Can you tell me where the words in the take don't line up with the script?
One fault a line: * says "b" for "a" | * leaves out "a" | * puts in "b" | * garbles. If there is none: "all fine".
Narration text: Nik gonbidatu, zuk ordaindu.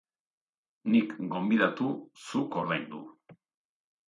all fine